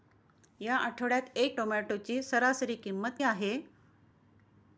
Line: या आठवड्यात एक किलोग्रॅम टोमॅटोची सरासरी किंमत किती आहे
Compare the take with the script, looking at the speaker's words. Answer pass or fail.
fail